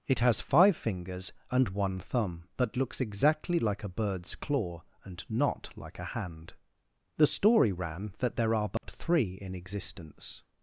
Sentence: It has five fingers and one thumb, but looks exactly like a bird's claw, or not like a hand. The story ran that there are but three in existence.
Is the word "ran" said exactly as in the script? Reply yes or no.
yes